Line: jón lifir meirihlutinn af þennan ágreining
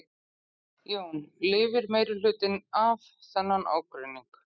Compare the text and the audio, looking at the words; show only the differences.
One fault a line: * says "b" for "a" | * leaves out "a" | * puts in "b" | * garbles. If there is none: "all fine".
all fine